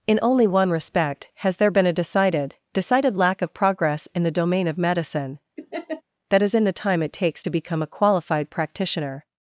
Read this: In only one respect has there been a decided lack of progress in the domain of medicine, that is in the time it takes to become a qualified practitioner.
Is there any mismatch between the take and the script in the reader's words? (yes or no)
yes